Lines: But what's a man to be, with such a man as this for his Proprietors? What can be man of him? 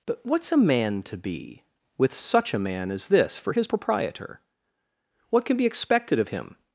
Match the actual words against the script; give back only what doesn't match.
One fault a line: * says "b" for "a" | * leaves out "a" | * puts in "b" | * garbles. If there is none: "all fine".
* says "Proprietor" for "Proprietors"
* says "expected" for "man"